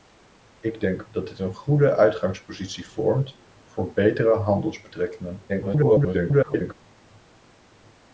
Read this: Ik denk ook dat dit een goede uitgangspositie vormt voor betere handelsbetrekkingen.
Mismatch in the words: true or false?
true